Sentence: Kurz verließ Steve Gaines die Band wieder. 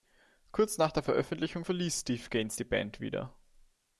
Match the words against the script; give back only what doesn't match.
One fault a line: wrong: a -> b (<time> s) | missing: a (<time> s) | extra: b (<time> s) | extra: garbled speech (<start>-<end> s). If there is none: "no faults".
extra: nach der Veröffentlichung (0.8 s)